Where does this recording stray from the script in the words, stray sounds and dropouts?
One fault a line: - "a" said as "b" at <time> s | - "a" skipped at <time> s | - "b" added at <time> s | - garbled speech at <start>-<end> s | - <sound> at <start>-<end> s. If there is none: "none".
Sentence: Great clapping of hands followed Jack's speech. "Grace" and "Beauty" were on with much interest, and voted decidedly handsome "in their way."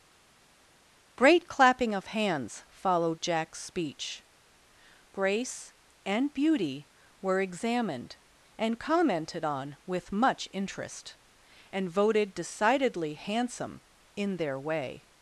- "examined and commented" added at 7.4 s